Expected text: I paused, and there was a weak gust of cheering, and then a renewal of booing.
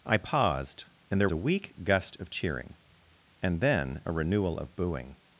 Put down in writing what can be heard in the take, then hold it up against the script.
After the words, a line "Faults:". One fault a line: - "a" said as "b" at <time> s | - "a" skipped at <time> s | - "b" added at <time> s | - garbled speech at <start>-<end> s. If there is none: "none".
I paused, and there a weak gust of cheering, and then a renewal of booing.
Faults:
- "was" skipped at 1.3 s